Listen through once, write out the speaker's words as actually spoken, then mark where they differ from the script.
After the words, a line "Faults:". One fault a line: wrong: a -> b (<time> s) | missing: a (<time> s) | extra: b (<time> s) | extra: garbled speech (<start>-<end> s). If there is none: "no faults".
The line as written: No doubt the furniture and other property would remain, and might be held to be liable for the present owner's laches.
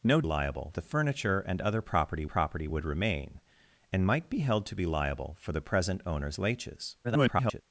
No liable the furniture and other property property would remain, and might be held to be liable for the present owner's laches. [garbled]
Faults:
wrong: doubt -> liable (0.2 s)
extra: property (2.2 s)
extra: garbled speech (7.0-7.6 s)